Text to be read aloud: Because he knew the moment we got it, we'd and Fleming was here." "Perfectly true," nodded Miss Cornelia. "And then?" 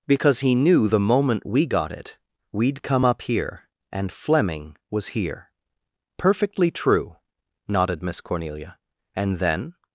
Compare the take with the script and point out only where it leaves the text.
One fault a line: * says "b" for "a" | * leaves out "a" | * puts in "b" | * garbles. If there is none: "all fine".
* puts in "come up here"